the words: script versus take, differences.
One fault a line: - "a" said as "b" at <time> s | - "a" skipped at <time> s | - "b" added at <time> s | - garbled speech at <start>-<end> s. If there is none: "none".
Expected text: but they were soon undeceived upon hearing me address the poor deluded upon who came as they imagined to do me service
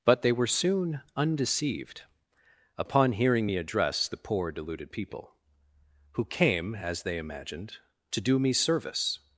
- "upon" said as "people" at 4.9 s